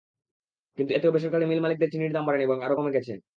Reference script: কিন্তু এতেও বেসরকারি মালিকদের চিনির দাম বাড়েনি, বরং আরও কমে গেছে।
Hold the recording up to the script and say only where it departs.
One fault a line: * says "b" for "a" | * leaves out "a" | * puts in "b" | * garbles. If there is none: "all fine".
* puts in "মিল"